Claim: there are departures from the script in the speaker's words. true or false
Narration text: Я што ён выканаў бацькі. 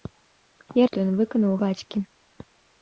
false